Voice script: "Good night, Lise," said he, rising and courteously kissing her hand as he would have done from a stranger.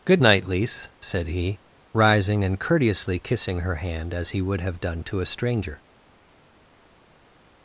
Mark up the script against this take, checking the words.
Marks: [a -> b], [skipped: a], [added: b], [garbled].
"Good night, Lise," said he, rising and courteously kissing her hand as he would have done [from -> to] a stranger.